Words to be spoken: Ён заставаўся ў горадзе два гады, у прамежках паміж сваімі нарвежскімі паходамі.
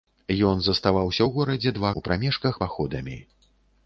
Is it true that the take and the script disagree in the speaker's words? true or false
true